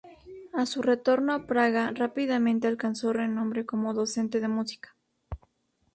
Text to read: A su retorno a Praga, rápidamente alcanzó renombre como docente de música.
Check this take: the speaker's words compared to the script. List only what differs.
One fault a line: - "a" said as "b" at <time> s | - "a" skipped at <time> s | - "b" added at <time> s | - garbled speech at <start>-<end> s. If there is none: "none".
none